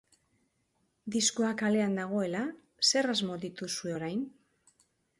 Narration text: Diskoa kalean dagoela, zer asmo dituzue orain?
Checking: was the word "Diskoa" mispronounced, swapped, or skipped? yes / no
no